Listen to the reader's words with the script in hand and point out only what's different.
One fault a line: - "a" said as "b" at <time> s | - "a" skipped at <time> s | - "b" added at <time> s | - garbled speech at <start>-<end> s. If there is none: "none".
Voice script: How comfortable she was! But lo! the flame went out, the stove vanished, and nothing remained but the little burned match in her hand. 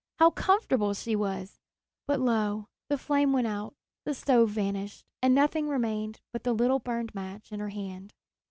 none